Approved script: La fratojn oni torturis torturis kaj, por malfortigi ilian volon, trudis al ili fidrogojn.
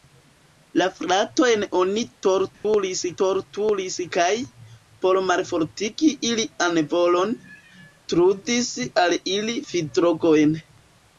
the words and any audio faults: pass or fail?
fail